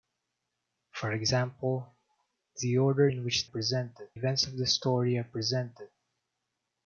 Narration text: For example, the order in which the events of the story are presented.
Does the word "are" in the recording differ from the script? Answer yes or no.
no